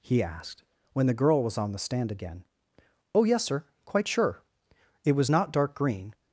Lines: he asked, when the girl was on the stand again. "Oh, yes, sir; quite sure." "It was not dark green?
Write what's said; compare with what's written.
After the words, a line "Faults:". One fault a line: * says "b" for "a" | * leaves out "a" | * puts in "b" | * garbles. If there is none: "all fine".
he asked, when the girl was on the stand again. "Oh, yes, sir; quite sure." "It was not dark green?
Faults:
all fine